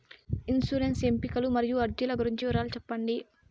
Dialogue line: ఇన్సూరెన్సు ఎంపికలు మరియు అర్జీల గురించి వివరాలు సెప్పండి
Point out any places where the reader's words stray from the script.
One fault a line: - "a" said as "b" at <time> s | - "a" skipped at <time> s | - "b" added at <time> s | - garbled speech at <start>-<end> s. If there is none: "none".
none